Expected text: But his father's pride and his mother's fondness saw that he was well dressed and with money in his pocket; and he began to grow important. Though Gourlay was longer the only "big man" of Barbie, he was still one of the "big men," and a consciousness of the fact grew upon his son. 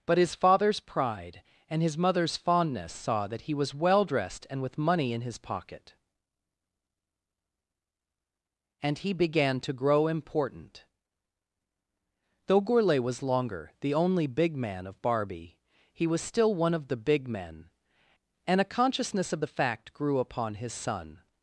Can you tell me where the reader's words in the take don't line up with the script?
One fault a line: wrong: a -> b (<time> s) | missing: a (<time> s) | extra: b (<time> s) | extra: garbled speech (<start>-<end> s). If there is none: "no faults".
no faults